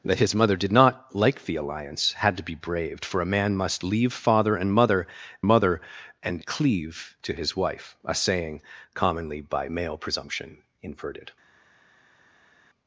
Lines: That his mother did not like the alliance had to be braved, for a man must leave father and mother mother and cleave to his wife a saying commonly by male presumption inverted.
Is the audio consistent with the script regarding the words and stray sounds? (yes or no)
yes